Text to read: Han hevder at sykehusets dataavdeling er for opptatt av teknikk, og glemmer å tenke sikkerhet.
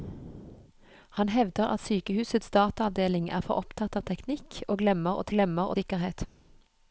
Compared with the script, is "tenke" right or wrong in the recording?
wrong